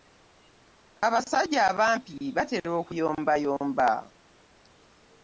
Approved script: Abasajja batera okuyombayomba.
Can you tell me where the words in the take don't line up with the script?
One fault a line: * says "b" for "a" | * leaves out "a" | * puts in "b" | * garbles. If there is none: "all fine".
* puts in "abampi"